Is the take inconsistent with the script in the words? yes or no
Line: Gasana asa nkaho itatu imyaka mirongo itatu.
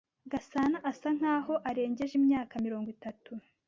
yes